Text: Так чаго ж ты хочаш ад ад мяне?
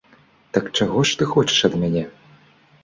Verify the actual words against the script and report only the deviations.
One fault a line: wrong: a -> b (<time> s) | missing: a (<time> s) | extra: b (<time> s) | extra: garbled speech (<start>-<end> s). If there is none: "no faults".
missing: ад (1.8 s)